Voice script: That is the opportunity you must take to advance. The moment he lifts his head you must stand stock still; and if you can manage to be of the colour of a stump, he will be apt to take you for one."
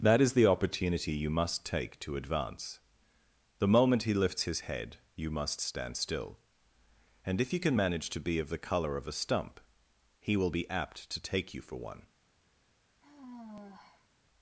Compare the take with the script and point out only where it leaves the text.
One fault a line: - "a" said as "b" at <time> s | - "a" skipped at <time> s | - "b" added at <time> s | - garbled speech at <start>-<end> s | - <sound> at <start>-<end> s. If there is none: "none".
- "stock" skipped at 6.0 s
- sigh at 13.0-14.1 s